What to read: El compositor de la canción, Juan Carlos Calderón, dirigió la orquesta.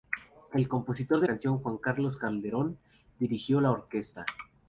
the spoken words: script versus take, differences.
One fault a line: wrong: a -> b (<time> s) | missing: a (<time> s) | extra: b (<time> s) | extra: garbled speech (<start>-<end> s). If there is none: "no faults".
missing: la (1.3 s)